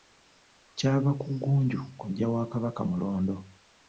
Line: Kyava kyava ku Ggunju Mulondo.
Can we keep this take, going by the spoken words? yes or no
no